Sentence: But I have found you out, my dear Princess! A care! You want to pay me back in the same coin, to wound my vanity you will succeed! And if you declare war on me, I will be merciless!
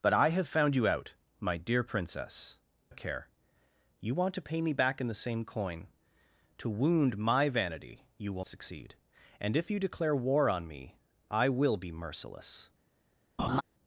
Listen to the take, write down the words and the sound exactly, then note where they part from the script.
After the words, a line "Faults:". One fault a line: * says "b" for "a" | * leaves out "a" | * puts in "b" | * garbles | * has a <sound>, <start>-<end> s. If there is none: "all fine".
But I have found you out, my dear Princess! A care! You want to pay me back in the same coin, to wound my vanity you will succeed! And if you declare war on me, I will be merciless!
Faults:
* has a laugh, 13.4-13.6 s